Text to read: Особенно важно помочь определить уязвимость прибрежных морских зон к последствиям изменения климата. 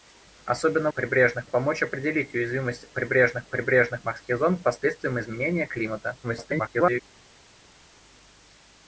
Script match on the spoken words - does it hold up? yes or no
no